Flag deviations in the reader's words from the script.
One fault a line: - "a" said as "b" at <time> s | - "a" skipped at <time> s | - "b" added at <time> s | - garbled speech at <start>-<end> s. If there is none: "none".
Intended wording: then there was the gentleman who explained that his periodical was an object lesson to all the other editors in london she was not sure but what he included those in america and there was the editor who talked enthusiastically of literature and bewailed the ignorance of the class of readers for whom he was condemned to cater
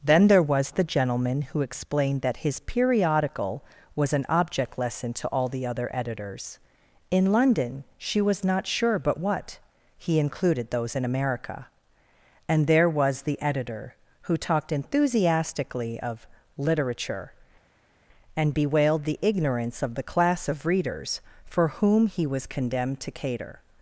none